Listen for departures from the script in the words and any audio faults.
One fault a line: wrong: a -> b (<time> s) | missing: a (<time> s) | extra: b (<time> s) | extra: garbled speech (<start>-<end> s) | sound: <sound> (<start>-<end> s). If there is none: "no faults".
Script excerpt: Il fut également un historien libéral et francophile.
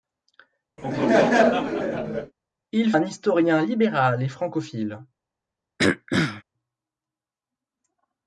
sound: laugh (0.8-2.3 s)
missing: fut également (2.9 s)
sound: throat clearing (5.8-6.4 s)